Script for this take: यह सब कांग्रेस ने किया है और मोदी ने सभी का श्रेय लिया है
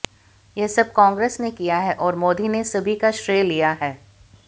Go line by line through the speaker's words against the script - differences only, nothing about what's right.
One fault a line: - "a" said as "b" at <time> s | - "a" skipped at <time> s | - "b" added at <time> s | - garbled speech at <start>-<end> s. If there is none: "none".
none